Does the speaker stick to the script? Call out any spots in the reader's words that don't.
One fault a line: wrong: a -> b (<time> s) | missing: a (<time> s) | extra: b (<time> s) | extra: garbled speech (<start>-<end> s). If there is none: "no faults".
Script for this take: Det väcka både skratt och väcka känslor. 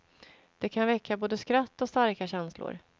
extra: kan (0.7 s)
wrong: väcka -> starka (1.9 s)